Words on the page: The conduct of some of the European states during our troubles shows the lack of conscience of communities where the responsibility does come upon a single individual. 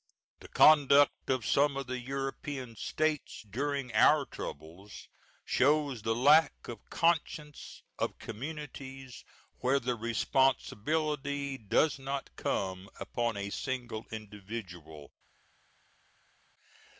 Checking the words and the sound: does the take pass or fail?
fail